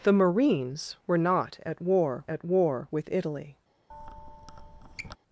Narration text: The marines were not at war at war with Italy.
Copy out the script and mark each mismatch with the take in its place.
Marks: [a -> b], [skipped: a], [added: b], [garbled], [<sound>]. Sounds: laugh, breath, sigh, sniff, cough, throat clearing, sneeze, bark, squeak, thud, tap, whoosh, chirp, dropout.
The marines were not at war at war with Italy. [squeak]